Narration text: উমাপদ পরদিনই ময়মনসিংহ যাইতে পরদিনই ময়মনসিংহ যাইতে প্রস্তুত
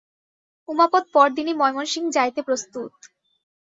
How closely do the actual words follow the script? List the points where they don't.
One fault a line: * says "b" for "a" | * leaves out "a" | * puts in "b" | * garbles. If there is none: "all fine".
* leaves out "পরদিনই ময়মনসিংহ যাইতে"